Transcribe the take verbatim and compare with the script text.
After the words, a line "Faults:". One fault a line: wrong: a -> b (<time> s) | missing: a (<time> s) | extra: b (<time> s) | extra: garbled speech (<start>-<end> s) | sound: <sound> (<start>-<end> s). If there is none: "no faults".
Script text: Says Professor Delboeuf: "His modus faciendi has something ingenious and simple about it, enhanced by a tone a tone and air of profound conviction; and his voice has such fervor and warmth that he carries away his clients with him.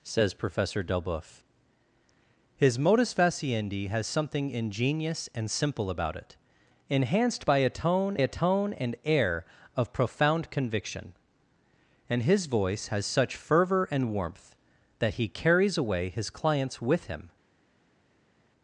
Says Professor Delboeuf: "His modus faciendi has something ingenious and simple about it, enhanced by a tone a tone and air of profound conviction; and his voice has such fervor and warmth that he carries away his clients with him.
Faults:
no faults